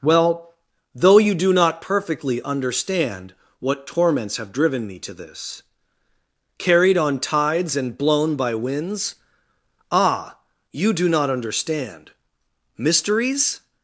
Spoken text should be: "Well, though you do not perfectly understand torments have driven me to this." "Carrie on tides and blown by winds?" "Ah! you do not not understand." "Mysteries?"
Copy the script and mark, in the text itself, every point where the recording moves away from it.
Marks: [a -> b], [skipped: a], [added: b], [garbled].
"Well, though you do not perfectly understand [added: what] torments have driven me to this." ["Carrie -> Carried] on tides and blown by winds?" "Ah! you do not [skipped: not] understand." "Mysteries?"